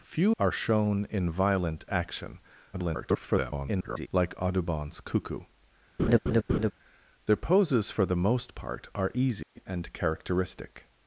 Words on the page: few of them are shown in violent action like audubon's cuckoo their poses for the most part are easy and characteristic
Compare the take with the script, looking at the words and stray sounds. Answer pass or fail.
fail